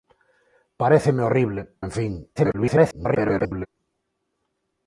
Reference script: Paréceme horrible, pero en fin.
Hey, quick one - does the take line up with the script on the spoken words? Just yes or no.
no